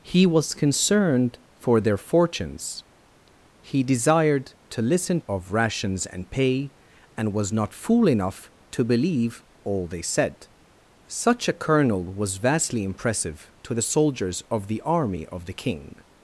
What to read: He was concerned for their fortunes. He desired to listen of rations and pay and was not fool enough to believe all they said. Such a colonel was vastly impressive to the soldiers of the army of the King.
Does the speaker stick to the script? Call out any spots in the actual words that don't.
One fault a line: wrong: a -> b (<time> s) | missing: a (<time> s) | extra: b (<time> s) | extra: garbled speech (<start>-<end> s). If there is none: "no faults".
no faults